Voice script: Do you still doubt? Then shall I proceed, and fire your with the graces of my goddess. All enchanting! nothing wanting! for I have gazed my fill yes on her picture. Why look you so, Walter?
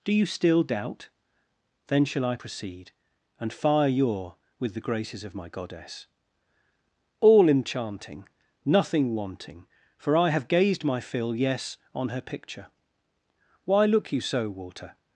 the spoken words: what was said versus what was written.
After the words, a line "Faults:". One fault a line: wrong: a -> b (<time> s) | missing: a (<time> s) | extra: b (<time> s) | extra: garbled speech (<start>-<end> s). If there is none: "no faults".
Do you still doubt? Then shall I proceed, and fire your with the graces of my goddess. All enchanting! nothing wanting! for I have gazed my fill yes on her picture. Why look you so, Walter?
Faults:
no faults